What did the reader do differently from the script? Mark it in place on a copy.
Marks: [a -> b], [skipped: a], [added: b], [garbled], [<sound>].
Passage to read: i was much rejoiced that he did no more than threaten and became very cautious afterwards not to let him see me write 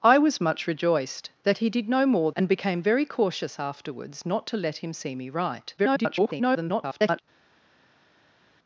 i was much rejoiced that he did no more [skipped: than threaten] and became very cautious afterwards not to let him see me write [garbled]